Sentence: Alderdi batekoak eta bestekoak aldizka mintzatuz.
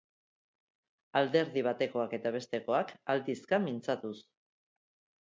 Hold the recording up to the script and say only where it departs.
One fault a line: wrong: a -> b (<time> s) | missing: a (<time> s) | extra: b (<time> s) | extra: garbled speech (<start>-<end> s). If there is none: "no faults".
no faults